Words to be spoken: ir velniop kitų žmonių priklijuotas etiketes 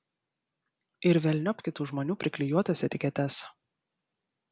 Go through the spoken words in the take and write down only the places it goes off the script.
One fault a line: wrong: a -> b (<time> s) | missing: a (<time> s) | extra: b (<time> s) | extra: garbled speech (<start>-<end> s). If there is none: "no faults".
no faults